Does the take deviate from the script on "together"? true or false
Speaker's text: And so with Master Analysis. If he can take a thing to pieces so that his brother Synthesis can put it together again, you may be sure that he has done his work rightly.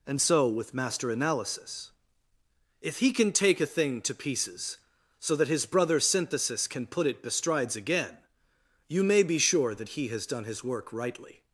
true